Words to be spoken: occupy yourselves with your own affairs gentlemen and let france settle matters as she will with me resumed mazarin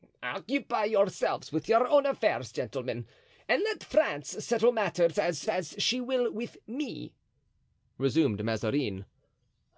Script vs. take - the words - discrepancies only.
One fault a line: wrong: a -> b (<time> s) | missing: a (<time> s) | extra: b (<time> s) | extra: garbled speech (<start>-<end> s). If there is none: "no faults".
extra: as (5.5 s)